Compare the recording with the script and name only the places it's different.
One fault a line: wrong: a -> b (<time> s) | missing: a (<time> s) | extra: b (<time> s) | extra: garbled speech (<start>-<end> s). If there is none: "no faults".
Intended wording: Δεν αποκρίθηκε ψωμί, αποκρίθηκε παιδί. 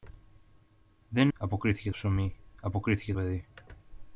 no faults